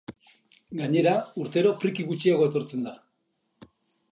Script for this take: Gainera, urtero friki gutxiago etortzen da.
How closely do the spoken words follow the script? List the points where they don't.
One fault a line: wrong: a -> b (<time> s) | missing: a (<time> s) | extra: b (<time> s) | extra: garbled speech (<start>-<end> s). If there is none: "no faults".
no faults